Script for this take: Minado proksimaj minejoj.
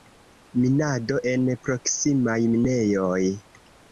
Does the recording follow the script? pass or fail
fail